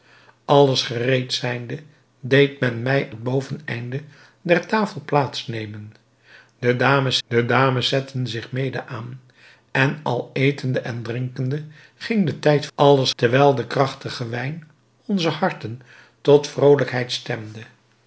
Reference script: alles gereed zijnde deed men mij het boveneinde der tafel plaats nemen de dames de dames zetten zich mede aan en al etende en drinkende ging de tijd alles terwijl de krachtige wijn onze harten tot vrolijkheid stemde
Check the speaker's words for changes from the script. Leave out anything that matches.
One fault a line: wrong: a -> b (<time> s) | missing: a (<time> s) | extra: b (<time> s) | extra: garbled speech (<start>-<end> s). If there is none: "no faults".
no faults